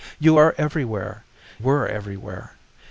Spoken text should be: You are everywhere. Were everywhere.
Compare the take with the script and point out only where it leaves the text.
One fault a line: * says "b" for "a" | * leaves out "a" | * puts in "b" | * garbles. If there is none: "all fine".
all fine